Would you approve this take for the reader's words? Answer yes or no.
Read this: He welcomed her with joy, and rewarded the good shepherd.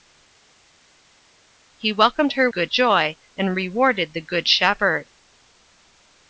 no